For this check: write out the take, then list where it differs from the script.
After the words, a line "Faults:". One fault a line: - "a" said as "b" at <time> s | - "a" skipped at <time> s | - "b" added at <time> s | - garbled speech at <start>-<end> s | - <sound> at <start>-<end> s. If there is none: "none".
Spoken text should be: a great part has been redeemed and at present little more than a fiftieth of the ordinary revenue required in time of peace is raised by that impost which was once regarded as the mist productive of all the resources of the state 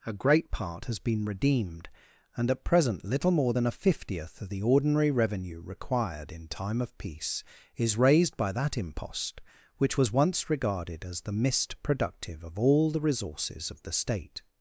a great part has been redeemed and at present little more than a fiftieth of the ordinary revenue required in time of peace is raised by that impost which was once regarded as the mist productive of all the resources of the state
Faults:
none